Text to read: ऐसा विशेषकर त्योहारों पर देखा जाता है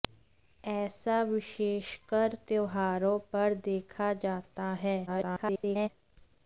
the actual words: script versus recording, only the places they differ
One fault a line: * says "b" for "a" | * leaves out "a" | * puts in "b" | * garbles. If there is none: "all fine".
* garbles